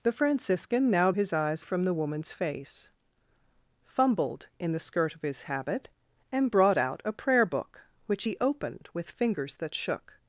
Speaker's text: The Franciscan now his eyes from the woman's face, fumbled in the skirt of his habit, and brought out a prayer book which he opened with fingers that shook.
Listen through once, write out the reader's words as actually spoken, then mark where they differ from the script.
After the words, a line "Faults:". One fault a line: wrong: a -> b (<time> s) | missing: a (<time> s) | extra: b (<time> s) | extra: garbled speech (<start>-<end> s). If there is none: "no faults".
The Franciscan now his eyes from the woman's face, fumbled in the skirt of his habit, and brought out a prayer book which he opened with fingers that shook.
Faults:
no faults